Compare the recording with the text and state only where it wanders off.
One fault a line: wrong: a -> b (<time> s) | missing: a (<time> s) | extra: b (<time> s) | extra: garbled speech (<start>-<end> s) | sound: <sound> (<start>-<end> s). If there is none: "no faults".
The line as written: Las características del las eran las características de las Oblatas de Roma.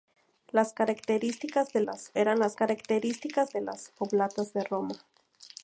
no faults